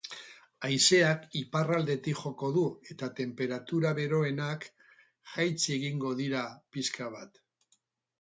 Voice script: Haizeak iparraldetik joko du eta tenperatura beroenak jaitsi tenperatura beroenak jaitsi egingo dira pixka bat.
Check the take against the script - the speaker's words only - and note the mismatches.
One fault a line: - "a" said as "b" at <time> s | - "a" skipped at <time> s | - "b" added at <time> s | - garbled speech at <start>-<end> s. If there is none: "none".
- "tenperatura beroenak jaitsi" skipped at 5.8 s